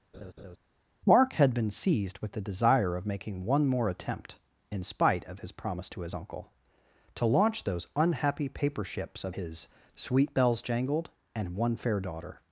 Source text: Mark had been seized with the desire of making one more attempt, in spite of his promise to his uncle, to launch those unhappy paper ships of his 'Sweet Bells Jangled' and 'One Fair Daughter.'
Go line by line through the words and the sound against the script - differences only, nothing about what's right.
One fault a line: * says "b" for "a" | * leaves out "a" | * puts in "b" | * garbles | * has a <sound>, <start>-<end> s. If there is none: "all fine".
* has a laugh, 0.1-0.6 s